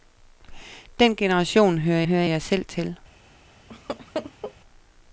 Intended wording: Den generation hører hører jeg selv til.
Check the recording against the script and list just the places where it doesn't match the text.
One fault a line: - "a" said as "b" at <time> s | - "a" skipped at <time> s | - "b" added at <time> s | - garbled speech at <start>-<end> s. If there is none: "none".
none